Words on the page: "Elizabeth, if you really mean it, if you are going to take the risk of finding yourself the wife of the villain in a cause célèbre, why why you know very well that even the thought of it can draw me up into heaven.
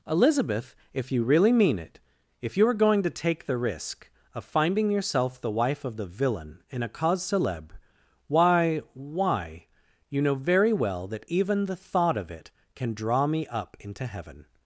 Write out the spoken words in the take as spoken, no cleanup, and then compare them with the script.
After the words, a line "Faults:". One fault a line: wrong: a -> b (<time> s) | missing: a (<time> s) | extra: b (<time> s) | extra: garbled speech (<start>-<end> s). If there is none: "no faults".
"Elizabeth, if you really mean it, if you are going to take the risk of finding yourself the wife of the villain in a cause célèbre, why why you know very well that even the thought of it can draw me up into heaven.
Faults:
no faults